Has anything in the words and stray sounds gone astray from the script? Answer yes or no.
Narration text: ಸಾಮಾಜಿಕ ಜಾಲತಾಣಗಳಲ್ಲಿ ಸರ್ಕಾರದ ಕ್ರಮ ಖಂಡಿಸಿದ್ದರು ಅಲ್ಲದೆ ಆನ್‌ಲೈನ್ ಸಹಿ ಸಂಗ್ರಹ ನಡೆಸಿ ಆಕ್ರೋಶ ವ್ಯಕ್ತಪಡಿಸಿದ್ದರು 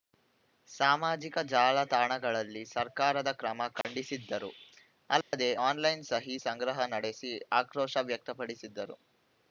yes